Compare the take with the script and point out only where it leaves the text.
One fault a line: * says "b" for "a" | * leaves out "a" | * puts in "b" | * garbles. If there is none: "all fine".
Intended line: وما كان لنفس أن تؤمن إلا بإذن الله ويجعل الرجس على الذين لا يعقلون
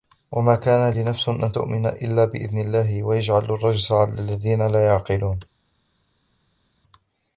all fine